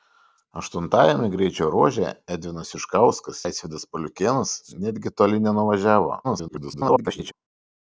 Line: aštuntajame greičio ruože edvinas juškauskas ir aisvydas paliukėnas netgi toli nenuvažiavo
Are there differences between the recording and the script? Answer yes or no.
yes